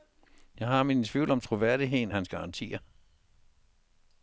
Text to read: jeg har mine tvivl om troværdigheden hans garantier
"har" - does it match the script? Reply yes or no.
yes